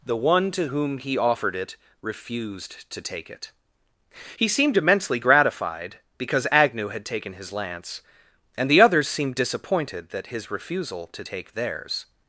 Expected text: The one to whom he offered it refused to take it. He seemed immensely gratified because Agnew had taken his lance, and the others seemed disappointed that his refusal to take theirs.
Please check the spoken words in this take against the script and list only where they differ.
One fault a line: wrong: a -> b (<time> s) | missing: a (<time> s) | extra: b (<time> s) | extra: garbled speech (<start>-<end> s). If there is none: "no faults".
no faults